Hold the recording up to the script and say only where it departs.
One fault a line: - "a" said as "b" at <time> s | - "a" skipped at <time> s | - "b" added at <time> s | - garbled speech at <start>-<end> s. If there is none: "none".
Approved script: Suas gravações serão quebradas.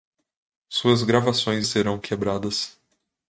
none